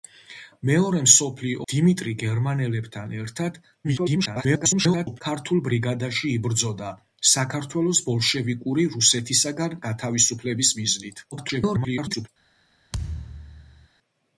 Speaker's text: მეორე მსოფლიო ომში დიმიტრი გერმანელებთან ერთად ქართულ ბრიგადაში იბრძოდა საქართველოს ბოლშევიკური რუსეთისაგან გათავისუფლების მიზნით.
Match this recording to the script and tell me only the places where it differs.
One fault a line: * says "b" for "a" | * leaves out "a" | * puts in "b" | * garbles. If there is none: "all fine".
* leaves out "ომში"
* garbles
* garbles